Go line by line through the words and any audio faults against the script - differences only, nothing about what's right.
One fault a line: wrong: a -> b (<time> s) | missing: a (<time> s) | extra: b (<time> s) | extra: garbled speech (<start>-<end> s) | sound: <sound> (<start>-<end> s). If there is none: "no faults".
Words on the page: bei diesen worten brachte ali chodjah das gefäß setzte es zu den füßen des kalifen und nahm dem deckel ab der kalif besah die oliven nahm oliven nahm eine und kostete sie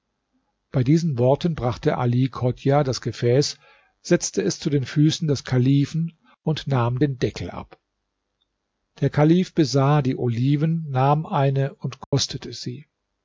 wrong: dem -> den (7.0 s)
missing: oliven nahm (11.2 s)
sound: dropout (12.0-12.1 s)